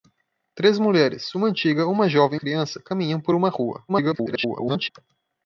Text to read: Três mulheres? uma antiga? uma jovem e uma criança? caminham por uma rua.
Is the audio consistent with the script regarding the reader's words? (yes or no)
no